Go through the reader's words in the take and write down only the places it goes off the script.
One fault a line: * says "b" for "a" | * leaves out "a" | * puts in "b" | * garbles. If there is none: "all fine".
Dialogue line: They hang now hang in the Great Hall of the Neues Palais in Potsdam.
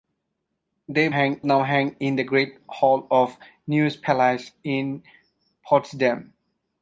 all fine